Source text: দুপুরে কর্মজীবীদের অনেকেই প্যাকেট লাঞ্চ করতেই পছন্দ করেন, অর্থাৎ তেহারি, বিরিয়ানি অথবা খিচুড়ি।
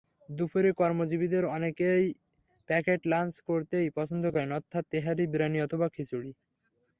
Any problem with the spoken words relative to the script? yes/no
no